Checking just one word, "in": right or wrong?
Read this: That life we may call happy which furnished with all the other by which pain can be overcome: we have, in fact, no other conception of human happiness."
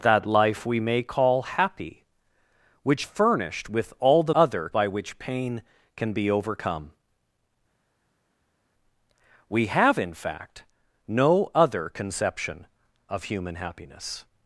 right